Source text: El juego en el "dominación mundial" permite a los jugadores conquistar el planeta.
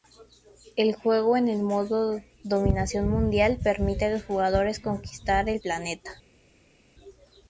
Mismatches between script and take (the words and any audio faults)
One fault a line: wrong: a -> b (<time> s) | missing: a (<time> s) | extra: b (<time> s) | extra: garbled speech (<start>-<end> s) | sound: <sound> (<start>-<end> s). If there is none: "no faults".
extra: modo (1.6 s)